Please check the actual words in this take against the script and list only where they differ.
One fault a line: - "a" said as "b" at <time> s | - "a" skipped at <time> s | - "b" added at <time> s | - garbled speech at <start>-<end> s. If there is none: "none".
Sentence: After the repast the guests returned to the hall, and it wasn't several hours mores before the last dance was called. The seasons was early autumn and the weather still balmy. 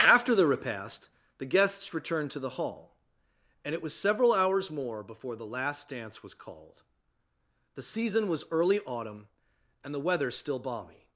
- "wasn't" said as "was" at 3.8 s
- "mores" said as "more" at 4.7 s
- "seasons" said as "season" at 7.8 s